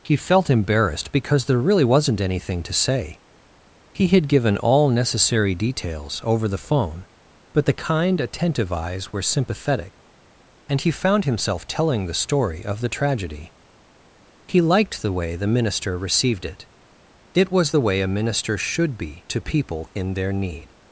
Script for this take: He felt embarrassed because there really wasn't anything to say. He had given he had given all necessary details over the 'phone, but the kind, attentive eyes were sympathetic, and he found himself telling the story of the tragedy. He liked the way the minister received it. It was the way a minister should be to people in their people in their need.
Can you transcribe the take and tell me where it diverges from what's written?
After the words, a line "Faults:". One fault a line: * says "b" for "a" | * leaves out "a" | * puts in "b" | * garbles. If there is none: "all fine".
He felt embarrassed because there really wasn't anything to say. He had given all necessary details over the 'phone, but the kind, attentive eyes were sympathetic, and he found himself telling the story of the tragedy. He liked the way the minister received it. It was the way a minister should be to people in their need.
Faults:
* leaves out "he had given"
* leaves out "people in their"